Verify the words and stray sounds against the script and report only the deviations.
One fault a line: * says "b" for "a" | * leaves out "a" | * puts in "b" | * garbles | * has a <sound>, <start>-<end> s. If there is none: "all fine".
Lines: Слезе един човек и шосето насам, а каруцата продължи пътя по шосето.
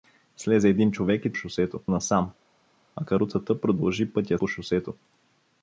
all fine